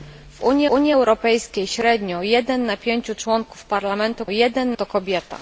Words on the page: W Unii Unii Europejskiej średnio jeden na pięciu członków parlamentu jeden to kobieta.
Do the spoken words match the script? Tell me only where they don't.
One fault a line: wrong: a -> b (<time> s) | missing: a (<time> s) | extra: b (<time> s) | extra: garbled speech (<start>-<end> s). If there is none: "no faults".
no faults